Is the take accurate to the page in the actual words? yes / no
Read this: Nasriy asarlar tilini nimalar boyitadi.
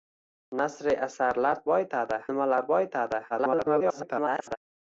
no